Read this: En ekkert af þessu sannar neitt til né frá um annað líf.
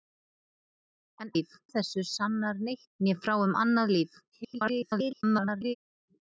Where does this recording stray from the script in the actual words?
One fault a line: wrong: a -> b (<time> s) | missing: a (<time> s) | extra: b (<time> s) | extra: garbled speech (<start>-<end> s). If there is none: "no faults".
wrong: ekkert -> líf (1.4 s)
missing: til (2.9 s)
extra: garbled speech (4.3-5.7 s)